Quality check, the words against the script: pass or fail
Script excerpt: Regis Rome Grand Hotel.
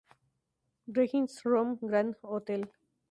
pass